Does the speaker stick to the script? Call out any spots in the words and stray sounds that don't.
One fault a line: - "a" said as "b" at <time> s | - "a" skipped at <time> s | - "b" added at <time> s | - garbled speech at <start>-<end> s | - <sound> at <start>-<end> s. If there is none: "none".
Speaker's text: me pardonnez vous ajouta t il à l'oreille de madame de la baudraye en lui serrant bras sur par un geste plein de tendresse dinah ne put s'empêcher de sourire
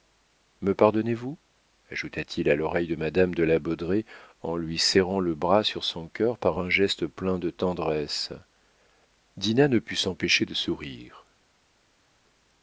- "le" added at 5.2 s
- "son cœur" added at 5.8 s